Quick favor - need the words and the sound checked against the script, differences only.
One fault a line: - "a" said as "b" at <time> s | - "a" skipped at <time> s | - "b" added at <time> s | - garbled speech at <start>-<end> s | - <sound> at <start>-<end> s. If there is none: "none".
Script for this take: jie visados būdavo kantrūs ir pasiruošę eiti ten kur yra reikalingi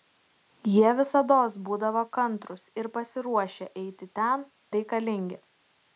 - "kur yra" skipped at 4.5 s